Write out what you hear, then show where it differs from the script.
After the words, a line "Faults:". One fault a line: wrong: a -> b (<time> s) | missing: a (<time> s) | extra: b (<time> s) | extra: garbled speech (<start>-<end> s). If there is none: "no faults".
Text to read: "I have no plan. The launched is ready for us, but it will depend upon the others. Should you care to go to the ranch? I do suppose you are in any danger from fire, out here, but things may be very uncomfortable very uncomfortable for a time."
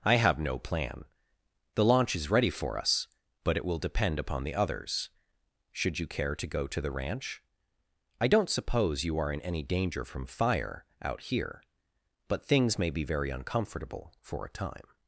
"I have no plan. The launch is ready for us, but it will depend upon the others. Should you care to go to the ranch? I don't suppose you are in any danger from fire, out here, but things may be very uncomfortable for a time."
Faults:
wrong: launched -> launch (1.9 s)
wrong: do -> don't (8.3 s)
missing: very uncomfortable (14.1 s)